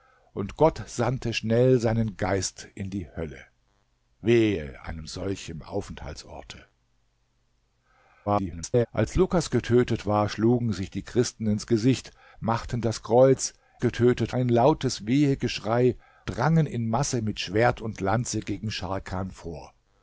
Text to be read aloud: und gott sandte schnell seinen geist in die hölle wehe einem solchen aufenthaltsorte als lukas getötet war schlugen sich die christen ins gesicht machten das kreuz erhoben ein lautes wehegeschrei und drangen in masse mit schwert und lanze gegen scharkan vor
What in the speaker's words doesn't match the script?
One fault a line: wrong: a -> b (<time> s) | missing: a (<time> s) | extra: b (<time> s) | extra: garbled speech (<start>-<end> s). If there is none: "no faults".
extra: garbled speech (8.3-8.9 s)
wrong: erhoben -> getötet (13.8 s)
missing: und (15.9 s)